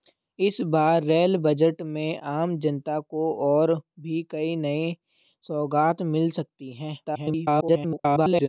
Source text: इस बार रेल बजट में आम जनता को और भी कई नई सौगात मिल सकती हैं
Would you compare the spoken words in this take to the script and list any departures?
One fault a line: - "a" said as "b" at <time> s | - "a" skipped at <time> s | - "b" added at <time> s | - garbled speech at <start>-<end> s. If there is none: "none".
- garbled speech at 7.0-8.5 s